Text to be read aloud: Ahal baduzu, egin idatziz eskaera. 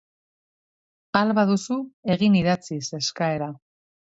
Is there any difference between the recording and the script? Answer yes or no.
no